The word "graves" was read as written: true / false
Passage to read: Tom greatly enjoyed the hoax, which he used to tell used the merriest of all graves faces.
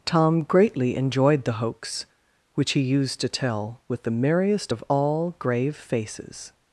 false